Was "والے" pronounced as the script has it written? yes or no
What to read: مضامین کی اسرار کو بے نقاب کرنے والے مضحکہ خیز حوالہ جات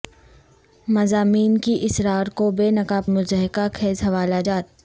no